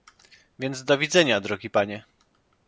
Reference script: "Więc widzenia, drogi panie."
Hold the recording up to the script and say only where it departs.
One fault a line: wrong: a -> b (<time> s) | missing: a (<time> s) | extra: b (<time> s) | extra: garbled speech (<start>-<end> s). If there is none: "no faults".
extra: do (0.8 s)